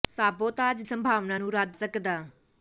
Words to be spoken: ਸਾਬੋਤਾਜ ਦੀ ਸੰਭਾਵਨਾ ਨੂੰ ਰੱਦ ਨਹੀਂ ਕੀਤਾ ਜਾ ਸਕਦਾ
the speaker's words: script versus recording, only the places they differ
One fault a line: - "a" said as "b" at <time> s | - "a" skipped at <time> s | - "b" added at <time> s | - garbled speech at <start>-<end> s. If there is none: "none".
- "ਦੀ" skipped at 0.8 s
- "ਨਹੀਂ ਕੀਤਾ ਜਾ" skipped at 1.8 s